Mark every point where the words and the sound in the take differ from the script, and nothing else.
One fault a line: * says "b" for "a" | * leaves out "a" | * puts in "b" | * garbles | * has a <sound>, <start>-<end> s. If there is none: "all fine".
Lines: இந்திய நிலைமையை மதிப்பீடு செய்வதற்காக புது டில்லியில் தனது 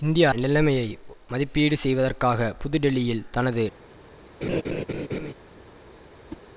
* has a laugh, 4.4-5.3 s
* has a whoosh, 6.3-6.4 s